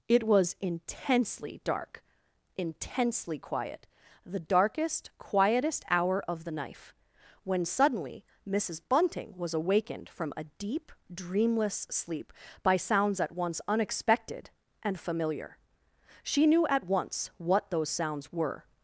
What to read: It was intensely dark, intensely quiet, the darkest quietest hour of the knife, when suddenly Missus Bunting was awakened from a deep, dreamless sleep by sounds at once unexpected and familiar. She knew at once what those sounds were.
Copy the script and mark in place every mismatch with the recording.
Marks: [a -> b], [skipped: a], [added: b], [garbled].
It was intensely dark, intensely quiet, the darkest quietest hour of the knife, when suddenly Missus Bunting was awakened from a deep, dreamless sleep by sounds at once unexpected and familiar. She knew at once what those sounds were.